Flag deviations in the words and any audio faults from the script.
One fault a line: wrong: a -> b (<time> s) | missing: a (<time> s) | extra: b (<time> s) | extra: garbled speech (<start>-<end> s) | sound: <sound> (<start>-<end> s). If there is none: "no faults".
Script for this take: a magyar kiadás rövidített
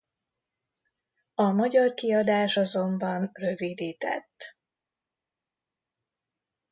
extra: azonban (2.5 s)